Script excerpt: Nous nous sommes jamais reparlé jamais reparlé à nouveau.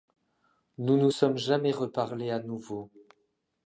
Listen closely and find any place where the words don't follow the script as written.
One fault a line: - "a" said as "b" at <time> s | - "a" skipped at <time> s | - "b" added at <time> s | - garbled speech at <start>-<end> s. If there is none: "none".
- "jamais reparlé" skipped at 2.3 s